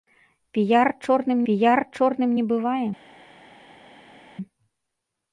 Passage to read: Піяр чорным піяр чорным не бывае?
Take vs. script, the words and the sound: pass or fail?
pass